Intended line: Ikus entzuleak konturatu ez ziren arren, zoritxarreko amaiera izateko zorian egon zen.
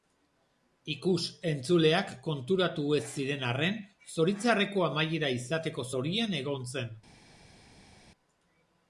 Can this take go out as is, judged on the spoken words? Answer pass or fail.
pass